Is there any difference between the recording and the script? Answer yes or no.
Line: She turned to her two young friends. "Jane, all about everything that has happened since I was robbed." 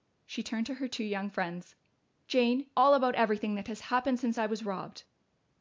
no